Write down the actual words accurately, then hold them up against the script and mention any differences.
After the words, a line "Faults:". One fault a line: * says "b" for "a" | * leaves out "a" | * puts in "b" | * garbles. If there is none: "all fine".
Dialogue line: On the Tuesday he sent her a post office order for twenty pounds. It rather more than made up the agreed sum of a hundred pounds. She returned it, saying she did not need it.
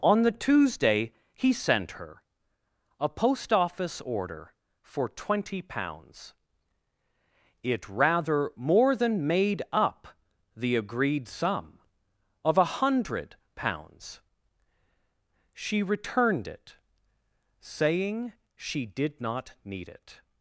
On the Tuesday he sent her a post office order for twenty pounds. It rather more than made up the agreed sum of a hundred pounds. She returned it, saying she did not need it.
Faults:
all fine